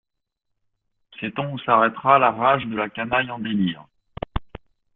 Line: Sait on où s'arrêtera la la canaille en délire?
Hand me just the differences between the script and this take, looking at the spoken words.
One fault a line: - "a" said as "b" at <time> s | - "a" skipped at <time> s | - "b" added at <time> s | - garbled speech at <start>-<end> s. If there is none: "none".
- "rage de" added at 2.3 s